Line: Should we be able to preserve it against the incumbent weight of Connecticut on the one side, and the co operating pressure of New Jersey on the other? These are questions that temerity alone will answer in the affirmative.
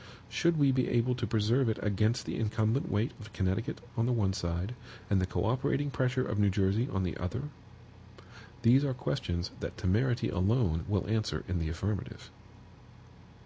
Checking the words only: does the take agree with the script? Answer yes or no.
yes